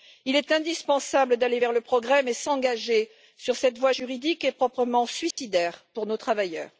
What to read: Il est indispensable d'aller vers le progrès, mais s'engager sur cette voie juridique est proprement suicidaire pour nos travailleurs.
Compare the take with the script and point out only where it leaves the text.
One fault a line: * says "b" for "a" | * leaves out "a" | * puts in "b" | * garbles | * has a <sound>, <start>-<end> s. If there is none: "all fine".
* has a dropout, 5.3-5.4 s